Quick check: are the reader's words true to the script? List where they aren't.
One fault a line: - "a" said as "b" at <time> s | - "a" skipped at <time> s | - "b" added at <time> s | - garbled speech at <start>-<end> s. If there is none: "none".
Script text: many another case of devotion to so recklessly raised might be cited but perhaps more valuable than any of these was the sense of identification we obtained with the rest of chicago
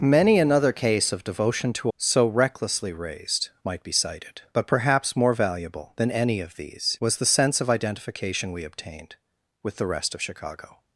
none